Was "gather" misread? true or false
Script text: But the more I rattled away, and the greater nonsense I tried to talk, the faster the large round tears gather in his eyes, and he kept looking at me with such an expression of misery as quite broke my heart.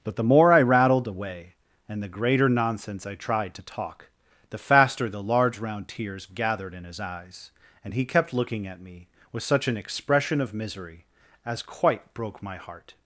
true